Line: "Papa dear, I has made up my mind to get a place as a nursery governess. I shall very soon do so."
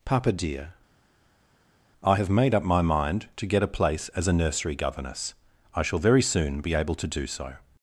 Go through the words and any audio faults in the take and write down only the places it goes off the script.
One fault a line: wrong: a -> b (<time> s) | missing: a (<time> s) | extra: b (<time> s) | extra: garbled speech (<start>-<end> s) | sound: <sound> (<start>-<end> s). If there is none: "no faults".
wrong: has -> have (2.1 s)
extra: be able to (6.6 s)